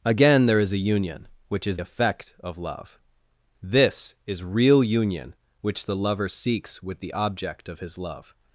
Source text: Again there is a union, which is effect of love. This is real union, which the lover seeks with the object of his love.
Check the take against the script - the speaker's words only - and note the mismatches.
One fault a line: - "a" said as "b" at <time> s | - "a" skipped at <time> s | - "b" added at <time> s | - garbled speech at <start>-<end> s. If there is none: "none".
none